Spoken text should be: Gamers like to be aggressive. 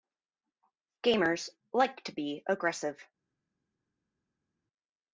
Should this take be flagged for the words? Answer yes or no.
no